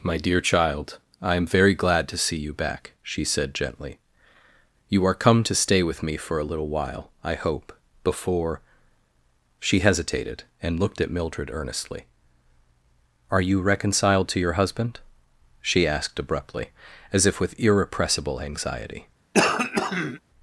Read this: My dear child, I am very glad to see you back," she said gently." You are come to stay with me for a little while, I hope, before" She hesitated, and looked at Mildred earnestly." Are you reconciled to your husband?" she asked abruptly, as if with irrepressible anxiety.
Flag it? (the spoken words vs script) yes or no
no